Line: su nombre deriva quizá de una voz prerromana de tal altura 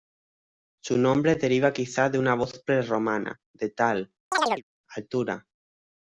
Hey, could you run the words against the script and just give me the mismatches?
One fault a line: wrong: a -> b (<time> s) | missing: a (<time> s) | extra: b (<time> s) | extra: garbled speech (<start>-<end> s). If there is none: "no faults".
no faults